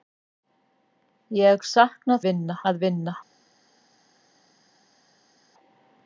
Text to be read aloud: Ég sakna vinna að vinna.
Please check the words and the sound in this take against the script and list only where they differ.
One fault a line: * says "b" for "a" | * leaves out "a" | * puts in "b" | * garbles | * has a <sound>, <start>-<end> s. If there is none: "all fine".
all fine